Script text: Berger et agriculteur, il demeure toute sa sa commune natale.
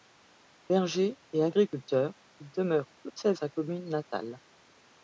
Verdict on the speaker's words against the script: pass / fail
pass